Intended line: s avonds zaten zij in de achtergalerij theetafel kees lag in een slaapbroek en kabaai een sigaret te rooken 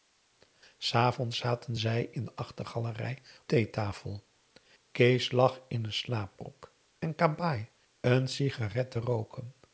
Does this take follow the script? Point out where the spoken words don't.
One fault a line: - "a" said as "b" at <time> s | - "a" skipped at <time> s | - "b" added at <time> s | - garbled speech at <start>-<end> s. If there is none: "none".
none